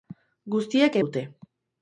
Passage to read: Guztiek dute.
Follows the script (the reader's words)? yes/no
yes